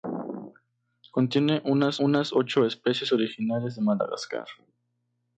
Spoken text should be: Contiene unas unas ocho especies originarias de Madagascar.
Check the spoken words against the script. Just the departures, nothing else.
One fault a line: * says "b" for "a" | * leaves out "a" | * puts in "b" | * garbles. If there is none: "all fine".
all fine